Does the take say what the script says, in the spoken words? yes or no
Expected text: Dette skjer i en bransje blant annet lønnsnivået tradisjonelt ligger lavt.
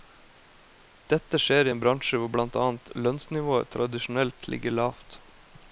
no